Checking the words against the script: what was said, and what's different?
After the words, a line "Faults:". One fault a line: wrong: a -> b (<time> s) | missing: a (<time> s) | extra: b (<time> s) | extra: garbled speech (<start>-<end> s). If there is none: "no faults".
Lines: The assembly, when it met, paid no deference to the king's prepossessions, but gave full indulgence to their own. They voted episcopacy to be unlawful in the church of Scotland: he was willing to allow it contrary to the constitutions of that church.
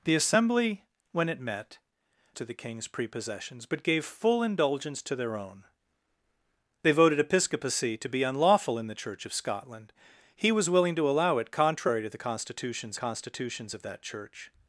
The assembly, when it met, to the king's prepossessions, but gave full indulgence to their own. They voted episcopacy to be unlawful in the church of Scotland: he was willing to allow it contrary to the constitutions constitutions of that church.
Faults:
missing: paid no deference (1.8 s)
extra: constitutions (12.9 s)